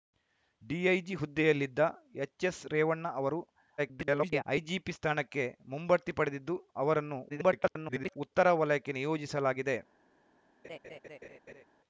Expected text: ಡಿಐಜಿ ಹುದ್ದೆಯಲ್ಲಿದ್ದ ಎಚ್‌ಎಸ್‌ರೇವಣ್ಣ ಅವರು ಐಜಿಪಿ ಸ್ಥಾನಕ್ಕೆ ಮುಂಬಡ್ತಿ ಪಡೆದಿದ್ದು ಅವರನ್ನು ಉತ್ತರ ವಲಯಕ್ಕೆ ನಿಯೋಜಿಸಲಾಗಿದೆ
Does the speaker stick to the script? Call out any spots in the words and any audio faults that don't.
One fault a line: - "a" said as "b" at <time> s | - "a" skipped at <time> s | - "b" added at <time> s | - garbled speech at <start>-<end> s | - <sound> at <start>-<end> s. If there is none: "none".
- garbled speech at 3.8-4.4 s
- garbled speech at 7.3-8.2 s
- laugh at 10.6-11.6 s